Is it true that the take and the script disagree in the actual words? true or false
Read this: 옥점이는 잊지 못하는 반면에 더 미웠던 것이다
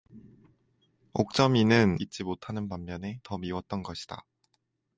false